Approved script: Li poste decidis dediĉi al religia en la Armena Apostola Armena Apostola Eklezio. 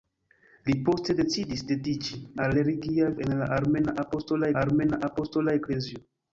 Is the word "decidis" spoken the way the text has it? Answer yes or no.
yes